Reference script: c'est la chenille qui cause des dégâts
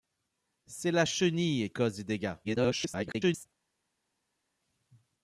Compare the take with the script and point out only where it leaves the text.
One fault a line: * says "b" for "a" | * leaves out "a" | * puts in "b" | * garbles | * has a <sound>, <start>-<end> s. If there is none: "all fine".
* leaves out "qui"
* garbles